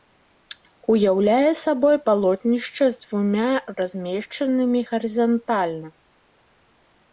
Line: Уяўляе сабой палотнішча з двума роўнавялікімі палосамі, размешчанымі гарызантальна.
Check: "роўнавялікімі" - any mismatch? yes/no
yes